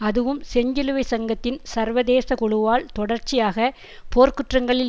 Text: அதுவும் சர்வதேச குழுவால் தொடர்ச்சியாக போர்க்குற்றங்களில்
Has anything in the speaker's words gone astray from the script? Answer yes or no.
yes